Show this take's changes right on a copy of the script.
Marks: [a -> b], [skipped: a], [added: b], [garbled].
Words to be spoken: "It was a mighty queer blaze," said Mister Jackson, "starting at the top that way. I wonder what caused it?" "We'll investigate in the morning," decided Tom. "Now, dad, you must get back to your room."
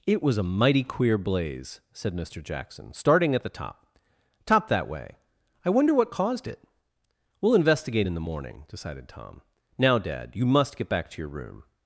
"It was a mighty queer blaze," said Mister Jackson, "starting at the top [added: top] that way. I wonder what caused it?" "We'll investigate in the morning," decided Tom. "Now, dad, you must get back to your room."